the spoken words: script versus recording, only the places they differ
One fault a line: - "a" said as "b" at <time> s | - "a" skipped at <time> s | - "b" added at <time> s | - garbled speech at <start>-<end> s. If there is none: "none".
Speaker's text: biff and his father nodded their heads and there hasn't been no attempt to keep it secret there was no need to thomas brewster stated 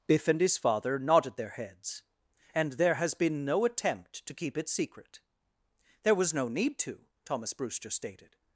- "hasn't" said as "has" at 3.0 s